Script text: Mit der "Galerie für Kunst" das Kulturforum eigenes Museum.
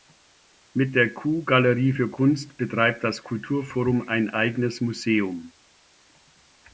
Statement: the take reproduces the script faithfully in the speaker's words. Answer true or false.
false